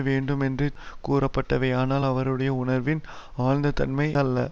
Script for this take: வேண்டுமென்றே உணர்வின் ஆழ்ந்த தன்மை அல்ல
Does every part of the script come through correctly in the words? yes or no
no